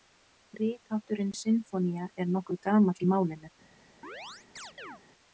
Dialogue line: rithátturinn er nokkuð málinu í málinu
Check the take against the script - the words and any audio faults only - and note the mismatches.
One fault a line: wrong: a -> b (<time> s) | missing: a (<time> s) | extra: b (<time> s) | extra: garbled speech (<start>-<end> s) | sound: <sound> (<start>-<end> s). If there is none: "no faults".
extra: sinfónía (1.4 s)
wrong: málinu -> gamall (2.7 s)
sound: chirp (4.0-5.0 s)